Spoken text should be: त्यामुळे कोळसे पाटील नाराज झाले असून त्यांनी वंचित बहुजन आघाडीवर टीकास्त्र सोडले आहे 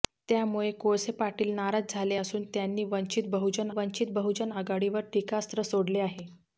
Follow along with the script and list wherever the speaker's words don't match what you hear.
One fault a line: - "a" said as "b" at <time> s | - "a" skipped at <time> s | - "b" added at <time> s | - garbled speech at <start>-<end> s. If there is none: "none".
- "वंचित बहुजन" added at 3.7 s